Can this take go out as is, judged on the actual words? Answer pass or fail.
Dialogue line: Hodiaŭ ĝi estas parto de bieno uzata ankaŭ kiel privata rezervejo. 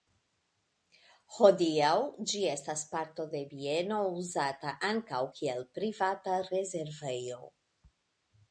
pass